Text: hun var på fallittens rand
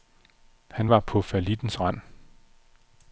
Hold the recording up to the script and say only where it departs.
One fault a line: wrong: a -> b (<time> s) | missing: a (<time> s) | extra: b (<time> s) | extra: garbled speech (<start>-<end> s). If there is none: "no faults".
wrong: hun -> han (0.7 s)